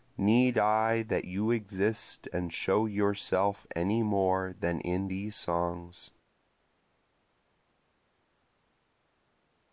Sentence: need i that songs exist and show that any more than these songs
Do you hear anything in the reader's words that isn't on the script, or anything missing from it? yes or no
yes